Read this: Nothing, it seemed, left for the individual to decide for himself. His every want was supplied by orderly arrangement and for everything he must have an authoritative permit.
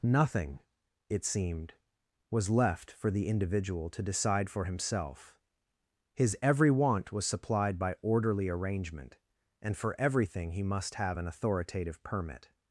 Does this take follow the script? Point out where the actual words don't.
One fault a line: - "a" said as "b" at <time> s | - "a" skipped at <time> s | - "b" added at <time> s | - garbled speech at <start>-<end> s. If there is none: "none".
- "was" added at 2.3 s